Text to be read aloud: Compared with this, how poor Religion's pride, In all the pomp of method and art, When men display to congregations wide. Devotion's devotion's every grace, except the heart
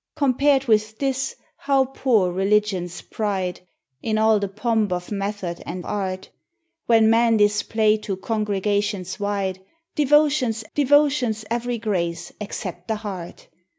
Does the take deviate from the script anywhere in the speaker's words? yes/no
no